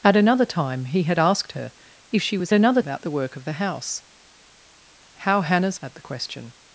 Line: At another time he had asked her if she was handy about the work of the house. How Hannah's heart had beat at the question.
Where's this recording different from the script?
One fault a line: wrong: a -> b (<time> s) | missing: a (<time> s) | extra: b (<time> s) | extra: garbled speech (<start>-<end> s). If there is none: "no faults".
wrong: handy -> another (2.5 s)
missing: heart had beat (5.8 s)